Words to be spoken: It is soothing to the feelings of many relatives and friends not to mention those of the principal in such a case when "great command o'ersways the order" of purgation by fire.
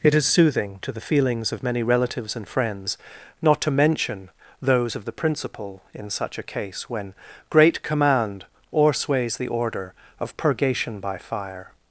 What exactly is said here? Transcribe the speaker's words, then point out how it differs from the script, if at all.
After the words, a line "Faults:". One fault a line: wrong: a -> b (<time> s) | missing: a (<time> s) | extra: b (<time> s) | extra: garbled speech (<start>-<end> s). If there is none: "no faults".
It is soothing to the feelings of many relatives and friends not to mention those of the principal in such a case when "great command o'ersways the order" of purgation by fire.
Faults:
no faults